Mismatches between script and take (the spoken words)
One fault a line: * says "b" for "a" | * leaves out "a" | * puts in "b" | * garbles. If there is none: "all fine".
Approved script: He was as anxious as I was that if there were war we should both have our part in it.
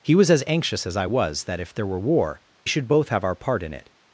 * leaves out "we"